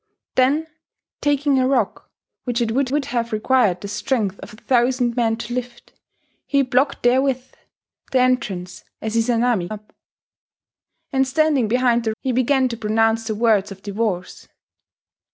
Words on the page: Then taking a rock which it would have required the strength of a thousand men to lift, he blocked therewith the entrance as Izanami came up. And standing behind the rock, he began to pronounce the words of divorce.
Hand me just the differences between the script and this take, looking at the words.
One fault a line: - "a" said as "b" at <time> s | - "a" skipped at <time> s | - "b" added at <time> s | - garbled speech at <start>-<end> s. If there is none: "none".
- "would" added at 2.9 s
- "came" skipped at 9.7 s
- "rock" skipped at 12.1 s